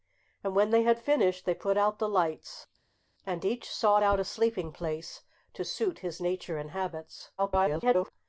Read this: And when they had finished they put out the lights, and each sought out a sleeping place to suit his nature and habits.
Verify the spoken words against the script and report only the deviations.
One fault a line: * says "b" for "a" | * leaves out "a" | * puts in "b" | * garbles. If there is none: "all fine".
* garbles